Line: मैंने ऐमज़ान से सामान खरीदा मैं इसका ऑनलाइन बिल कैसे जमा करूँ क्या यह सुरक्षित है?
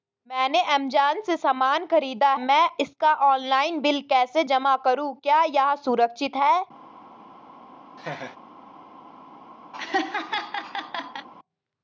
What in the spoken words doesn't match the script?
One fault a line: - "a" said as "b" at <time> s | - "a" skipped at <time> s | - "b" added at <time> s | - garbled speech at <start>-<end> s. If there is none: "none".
none